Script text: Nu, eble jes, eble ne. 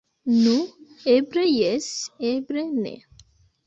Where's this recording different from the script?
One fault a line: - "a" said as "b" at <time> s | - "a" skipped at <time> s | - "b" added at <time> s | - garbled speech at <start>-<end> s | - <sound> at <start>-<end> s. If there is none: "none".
none